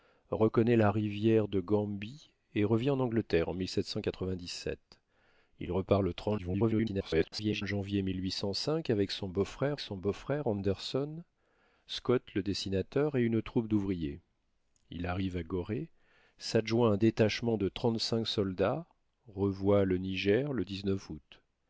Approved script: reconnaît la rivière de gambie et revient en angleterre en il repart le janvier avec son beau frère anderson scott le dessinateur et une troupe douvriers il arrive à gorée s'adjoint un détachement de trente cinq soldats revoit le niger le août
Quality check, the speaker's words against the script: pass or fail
fail